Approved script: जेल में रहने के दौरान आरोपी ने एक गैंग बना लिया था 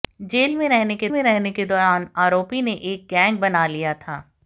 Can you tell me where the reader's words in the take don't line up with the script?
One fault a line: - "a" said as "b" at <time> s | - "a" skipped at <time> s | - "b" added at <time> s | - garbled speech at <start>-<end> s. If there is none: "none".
- "में रहने के" added at 1.1 s